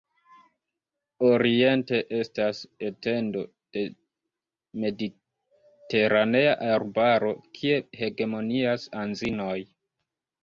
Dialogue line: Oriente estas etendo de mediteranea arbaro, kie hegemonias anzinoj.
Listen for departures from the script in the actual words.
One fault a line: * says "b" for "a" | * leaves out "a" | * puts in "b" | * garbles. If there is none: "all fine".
all fine